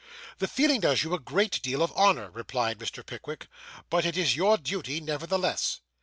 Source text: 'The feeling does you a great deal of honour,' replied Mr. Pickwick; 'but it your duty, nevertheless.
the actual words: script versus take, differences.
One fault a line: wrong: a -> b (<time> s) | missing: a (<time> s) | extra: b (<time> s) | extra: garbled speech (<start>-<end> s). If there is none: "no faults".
extra: is (4.1 s)